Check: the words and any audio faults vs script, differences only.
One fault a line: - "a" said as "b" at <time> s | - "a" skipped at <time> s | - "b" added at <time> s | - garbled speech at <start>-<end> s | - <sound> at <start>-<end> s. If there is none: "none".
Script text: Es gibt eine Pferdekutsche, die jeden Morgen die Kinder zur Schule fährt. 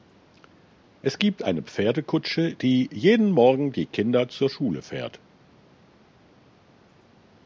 none